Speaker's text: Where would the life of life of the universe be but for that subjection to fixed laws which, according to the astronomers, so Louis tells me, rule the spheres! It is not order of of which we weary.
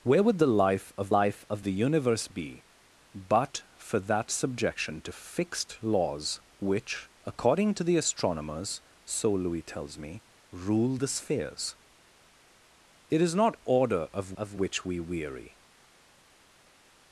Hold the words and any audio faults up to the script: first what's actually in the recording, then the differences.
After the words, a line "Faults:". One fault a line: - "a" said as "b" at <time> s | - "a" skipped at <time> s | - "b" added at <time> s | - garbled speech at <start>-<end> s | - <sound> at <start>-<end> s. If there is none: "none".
Where would the life of life of the universe be but for that subjection to fixed laws which, according to the astronomers, so Louis tells me, rule the spheres! It is not order of of which we weary.
Faults:
none